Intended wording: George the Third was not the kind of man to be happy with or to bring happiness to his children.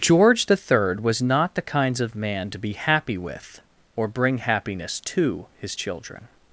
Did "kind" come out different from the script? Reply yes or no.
yes